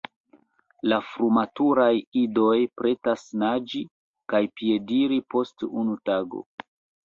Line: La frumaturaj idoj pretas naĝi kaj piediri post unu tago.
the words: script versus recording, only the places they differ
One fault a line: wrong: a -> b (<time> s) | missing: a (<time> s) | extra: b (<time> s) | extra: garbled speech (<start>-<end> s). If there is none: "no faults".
no faults